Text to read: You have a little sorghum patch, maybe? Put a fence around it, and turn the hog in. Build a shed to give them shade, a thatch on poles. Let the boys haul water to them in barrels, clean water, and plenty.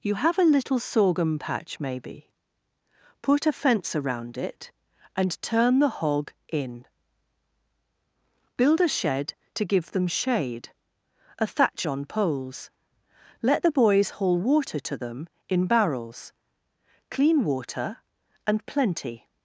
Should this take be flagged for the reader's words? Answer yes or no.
no